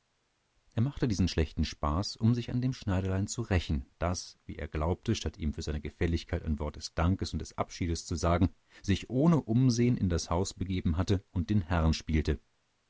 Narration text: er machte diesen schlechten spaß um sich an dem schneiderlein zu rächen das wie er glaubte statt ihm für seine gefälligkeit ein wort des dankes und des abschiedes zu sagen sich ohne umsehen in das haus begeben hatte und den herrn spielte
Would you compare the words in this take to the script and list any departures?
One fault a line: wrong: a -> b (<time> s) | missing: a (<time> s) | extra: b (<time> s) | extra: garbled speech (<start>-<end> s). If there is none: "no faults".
no faults